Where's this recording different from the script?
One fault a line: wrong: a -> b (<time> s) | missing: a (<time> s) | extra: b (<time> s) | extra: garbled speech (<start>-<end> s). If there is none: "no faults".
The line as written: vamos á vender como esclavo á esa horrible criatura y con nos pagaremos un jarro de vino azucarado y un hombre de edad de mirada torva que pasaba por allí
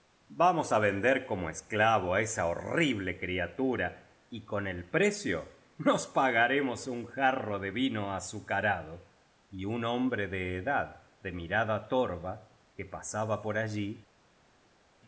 extra: el precio (4.7 s)